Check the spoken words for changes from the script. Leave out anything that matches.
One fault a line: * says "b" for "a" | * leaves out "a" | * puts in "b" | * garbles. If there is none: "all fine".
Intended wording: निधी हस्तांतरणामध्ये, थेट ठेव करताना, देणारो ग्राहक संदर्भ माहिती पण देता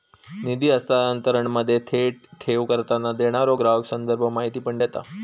all fine